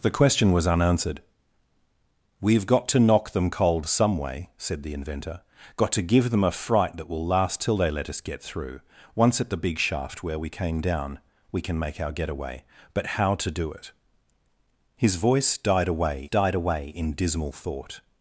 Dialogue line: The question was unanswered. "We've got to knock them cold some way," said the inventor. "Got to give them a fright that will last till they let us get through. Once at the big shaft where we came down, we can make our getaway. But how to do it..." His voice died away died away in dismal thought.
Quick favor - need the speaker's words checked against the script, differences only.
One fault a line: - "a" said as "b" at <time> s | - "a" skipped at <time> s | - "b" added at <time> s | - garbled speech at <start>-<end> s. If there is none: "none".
none